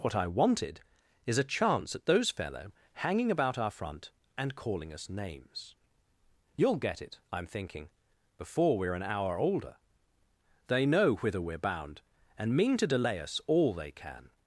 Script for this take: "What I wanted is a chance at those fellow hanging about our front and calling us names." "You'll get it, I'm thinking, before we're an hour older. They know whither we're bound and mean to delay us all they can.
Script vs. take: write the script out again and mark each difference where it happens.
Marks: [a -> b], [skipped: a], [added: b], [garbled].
"What I wanted is a chance at those fellow hanging about our front and calling us names." "You'll get it, I'm thinking, before we're an hour older. They know whither we're bound and mean to delay us all they can.